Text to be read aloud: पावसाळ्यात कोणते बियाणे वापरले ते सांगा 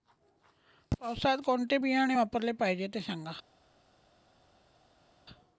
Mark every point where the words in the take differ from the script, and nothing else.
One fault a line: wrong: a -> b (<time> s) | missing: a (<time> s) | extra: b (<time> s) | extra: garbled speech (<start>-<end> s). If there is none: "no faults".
extra: पाहिजे (2.5 s)